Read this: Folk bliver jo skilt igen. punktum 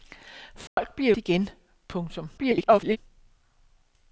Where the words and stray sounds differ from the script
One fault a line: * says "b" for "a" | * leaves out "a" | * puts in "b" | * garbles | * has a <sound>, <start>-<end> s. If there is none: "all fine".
* has a dropout, 0.7-0.8 s
* leaves out "jo skilt"
* garbles